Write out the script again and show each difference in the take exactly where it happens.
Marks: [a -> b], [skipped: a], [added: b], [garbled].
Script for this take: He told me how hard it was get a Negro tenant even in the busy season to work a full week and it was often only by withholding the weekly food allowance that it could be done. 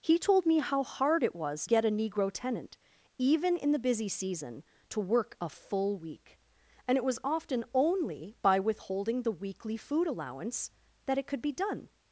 He told me how hard it was get a Negro tenant even in the busy season to work a full week and it was often only by withholding the weekly food allowance that it could be done.